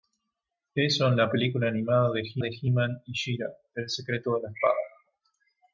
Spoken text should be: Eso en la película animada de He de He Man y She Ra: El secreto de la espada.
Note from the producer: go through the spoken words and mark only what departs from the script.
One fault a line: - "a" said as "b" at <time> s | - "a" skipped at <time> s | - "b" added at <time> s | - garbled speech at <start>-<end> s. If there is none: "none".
none